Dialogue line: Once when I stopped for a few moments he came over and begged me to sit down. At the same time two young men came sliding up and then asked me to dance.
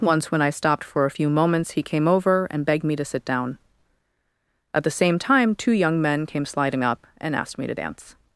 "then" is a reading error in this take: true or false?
true